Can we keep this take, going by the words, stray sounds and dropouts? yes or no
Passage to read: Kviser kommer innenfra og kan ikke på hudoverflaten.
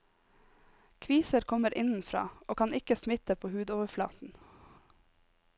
no